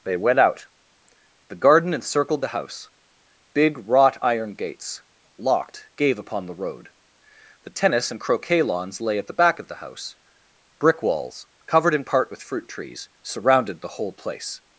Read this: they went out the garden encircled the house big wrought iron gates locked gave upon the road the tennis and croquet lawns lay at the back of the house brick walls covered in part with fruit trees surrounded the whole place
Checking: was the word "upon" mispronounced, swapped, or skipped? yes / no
no